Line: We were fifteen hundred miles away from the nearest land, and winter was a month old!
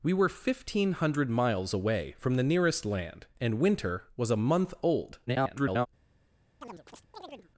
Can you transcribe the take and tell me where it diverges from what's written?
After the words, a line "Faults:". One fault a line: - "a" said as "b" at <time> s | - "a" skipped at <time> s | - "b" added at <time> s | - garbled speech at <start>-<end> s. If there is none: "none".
We were fifteen hundred miles away from the nearest land, and winter was a month old! [garbled]
Faults:
- garbled speech at 5.3-5.9 s